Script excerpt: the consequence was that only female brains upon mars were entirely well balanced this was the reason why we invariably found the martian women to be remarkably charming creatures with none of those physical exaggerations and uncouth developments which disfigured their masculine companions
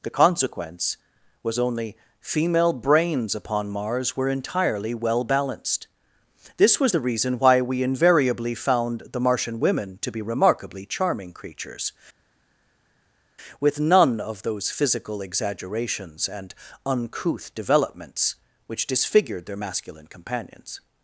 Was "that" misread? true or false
true